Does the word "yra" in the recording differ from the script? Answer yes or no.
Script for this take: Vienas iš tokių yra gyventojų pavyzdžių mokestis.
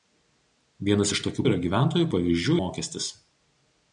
no